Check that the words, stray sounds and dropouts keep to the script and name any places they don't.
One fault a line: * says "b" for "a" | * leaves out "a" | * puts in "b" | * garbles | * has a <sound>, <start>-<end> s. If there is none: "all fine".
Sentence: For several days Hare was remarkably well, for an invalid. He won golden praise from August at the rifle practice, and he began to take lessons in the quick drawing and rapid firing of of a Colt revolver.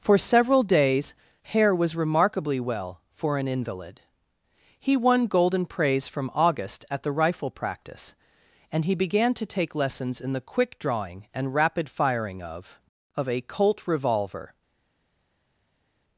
all fine